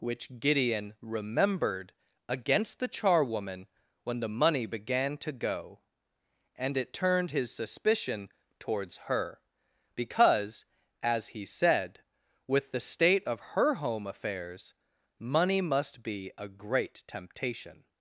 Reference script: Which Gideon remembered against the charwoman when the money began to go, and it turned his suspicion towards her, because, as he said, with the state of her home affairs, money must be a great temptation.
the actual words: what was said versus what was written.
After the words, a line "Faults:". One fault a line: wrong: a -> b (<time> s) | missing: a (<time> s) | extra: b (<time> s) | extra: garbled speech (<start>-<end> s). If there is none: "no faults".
Which Gideon remembered against the charwoman when the money began to go, and it turned his suspicion towards her, because, as he said, with the state of her home affairs, money must be a great temptation.
Faults:
no faults